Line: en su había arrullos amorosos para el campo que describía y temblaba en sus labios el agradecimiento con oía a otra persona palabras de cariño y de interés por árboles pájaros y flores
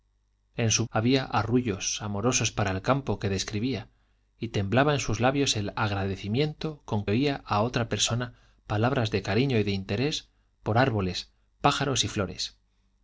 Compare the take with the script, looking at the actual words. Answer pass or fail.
pass